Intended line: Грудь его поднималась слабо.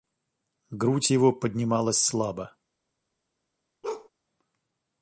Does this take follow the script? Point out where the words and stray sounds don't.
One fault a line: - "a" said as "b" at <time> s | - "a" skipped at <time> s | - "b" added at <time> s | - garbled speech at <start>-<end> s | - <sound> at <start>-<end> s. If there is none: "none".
- bark at 3.8-4.1 s